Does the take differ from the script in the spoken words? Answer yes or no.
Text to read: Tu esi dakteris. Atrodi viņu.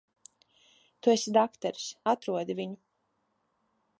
no